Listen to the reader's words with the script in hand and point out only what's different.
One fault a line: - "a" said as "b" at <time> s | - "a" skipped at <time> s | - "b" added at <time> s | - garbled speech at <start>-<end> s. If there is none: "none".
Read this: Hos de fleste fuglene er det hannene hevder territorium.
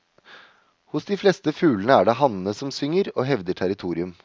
- "som synger og" added at 2.6 s